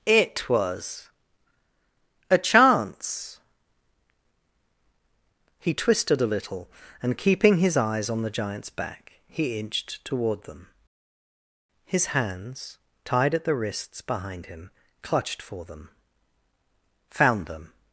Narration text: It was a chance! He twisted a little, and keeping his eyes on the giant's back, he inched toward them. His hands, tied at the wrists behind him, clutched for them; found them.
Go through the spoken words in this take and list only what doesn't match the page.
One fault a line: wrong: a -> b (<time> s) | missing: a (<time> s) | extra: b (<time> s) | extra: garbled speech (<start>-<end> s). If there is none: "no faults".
no faults